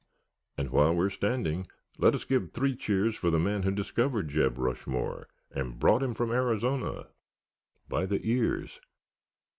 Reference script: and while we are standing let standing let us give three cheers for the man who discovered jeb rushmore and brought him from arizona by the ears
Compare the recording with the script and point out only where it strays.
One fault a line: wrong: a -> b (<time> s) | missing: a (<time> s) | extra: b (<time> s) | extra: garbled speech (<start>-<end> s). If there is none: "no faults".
missing: standing let (2.1 s)